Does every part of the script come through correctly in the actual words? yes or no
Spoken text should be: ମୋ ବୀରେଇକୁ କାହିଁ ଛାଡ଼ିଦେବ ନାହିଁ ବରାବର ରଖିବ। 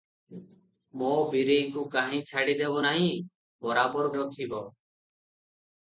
yes